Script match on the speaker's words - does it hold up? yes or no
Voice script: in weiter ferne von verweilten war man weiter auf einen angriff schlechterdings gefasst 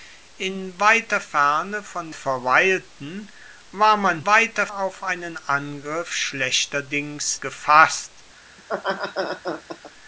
yes